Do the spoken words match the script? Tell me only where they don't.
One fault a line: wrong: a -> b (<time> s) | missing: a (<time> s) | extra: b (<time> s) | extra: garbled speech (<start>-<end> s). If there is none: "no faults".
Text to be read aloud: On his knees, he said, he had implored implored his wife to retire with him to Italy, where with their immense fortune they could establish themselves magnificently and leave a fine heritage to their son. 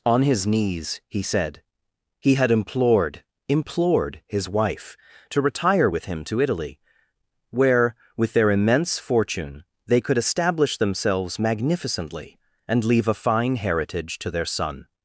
no faults